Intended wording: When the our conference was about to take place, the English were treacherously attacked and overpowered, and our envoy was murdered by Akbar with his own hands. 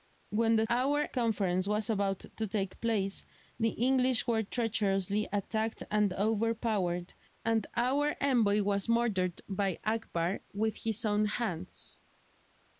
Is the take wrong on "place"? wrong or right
right